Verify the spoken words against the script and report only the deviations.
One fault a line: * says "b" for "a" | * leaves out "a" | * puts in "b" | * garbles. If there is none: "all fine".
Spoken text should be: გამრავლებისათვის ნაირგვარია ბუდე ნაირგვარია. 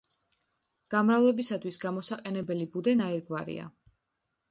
* says "გამოსაყენებელი" for "ნაირგვარია"